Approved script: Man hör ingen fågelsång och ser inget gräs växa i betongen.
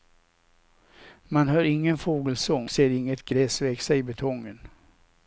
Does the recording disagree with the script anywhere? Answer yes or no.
yes